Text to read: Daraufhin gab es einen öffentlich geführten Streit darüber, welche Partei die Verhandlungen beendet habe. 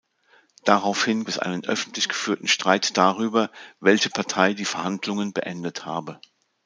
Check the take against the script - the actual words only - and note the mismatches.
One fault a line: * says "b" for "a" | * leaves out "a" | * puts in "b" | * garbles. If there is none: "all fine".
* leaves out "gab"